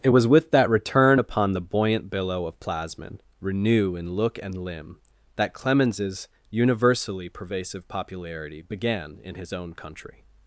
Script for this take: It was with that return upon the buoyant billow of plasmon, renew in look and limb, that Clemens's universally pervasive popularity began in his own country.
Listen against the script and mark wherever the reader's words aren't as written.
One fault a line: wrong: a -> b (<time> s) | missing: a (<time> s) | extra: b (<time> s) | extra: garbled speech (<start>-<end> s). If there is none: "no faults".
no faults